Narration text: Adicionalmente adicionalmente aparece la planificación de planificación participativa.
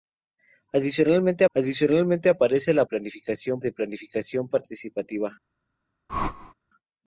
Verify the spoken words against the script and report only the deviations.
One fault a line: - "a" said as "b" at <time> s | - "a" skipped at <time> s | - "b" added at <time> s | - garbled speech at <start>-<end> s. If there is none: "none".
none